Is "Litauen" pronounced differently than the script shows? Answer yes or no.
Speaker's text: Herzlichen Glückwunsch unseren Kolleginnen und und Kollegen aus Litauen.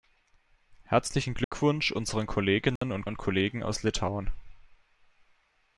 no